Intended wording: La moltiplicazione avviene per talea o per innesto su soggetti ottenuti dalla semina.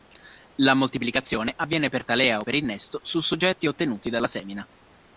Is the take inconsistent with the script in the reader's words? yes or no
no